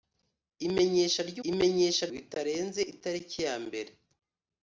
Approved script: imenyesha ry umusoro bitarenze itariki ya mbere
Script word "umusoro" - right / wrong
wrong